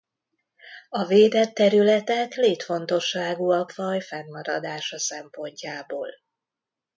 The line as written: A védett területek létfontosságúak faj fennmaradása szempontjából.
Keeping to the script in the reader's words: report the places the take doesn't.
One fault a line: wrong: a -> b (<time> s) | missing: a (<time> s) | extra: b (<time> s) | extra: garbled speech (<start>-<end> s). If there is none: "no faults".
no faults